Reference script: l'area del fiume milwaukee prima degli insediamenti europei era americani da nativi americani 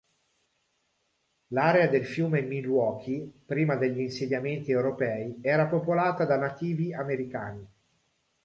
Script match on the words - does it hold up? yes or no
no